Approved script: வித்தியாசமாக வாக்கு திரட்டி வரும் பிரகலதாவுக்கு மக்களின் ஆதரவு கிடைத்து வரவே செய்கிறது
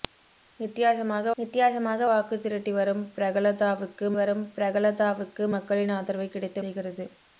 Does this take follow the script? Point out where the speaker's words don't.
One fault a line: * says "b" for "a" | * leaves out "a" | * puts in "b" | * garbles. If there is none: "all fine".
* puts in "வித்தியாசமாக"
* puts in "வரும் பிரகலதாவுக்கு"
* leaves out "வரவே"